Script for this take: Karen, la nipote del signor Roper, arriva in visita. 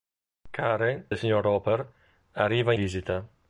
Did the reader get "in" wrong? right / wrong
wrong